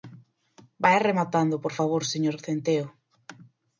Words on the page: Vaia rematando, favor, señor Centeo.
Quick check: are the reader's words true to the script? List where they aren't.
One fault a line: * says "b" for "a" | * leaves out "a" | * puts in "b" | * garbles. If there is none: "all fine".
* puts in "por"